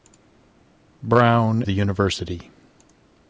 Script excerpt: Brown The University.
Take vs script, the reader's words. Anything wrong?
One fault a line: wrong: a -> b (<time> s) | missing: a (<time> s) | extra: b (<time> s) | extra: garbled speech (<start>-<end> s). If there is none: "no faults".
no faults